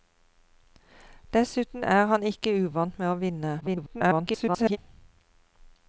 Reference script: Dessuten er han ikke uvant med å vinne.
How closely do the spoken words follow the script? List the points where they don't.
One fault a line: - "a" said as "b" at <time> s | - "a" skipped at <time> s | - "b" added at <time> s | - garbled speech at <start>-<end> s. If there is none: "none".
- garbled speech at 3.6-4.8 s